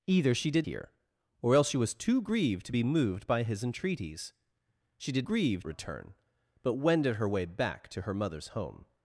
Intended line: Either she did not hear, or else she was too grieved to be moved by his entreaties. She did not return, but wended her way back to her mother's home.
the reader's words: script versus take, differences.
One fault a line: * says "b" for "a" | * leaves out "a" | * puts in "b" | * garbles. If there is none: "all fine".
* leaves out "not"
* says "grieved" for "not"